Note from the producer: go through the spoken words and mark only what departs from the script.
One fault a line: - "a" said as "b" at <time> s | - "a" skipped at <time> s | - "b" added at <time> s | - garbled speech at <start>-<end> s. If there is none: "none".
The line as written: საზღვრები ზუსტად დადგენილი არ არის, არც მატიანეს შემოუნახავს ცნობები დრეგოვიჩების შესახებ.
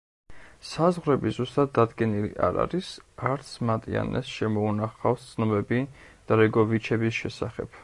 none